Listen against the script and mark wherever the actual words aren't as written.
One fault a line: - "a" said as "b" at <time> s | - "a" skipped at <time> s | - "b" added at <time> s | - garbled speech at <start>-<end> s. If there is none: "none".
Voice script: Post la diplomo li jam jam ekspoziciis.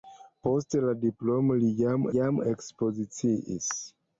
none